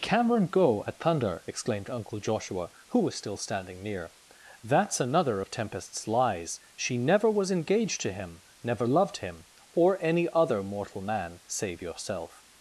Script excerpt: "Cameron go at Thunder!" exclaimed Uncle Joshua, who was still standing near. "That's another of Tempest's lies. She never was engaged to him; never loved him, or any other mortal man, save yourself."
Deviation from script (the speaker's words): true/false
false